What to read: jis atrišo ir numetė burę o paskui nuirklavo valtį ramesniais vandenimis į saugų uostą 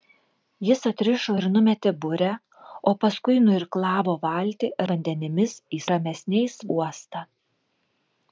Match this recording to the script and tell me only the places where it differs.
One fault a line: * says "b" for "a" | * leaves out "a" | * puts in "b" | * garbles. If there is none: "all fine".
* leaves out "ramesniais"
* says "ramesniais" for "saugų"